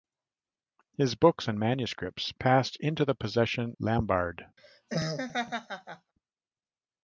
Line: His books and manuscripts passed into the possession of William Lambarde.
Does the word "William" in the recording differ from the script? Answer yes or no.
yes